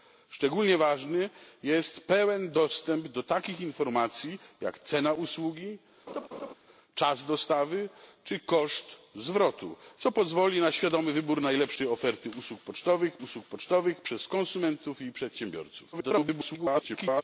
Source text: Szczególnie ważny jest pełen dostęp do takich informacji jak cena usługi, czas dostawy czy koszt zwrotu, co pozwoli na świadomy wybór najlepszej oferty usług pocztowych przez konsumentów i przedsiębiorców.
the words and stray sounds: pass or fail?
fail